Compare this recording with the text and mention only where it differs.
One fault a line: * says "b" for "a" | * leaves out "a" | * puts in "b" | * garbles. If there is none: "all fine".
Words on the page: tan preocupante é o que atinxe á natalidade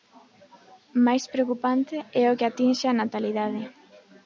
* says "máis" for "tan"